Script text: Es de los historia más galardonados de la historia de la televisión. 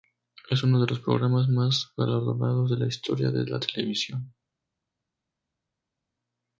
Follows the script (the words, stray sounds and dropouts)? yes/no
no